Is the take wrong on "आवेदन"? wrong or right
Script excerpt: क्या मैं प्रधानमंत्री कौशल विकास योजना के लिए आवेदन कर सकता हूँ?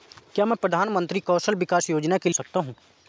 wrong